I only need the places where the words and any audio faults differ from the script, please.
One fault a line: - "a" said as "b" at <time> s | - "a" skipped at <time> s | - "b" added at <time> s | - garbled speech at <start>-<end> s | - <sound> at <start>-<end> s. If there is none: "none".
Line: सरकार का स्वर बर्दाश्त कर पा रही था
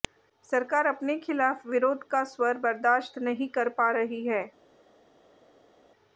- "अपने खिलाफ विरोध" added at 0.9 s
- "नहीं" added at 3.2 s
- "था" said as "है" at 4.2 s